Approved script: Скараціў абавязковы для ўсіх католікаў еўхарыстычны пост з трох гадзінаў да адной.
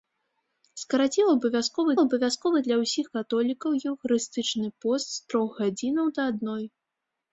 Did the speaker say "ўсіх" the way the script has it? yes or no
yes